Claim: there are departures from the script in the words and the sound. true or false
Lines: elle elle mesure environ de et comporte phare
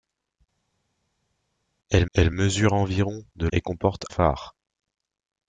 false